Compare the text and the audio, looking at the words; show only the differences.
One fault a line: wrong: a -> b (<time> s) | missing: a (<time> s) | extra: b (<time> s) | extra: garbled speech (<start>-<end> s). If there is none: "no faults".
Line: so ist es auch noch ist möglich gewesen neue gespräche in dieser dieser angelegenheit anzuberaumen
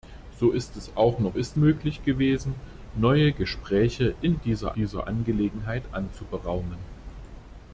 no faults